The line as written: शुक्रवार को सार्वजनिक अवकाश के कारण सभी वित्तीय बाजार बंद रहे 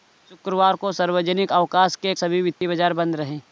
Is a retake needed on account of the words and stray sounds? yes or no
yes